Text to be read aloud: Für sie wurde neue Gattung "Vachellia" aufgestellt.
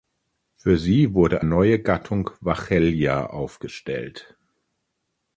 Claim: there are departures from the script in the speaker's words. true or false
false